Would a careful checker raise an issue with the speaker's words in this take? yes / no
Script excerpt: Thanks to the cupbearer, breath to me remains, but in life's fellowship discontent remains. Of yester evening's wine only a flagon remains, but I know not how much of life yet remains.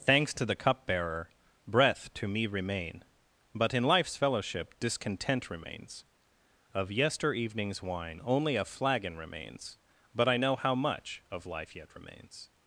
yes